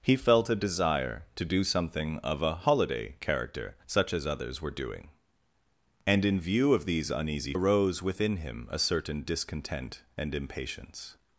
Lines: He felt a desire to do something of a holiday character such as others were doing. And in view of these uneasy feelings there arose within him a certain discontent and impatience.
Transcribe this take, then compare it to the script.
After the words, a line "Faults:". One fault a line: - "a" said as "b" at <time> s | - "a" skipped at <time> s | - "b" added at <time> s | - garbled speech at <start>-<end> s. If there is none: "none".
He felt a desire to do something of a holiday character such as others were doing. And in view of these uneasy arose within him a certain discontent and impatience.
Faults:
- "feelings there" skipped at 7.5 s